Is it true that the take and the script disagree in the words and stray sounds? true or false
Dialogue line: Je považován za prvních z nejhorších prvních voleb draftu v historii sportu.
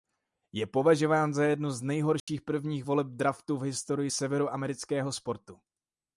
true